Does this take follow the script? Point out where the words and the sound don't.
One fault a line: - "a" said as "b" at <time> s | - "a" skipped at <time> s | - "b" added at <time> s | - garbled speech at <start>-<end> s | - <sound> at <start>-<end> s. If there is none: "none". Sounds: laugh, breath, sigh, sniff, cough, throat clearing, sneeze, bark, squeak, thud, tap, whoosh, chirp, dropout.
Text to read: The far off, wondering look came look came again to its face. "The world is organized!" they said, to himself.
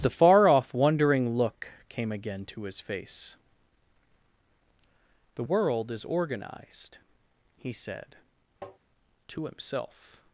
- "look came" skipped at 2.1 s
- "its" said as "his" at 2.6 s
- "they" said as "he" at 7.6 s
- tap at 8.6-8.8 s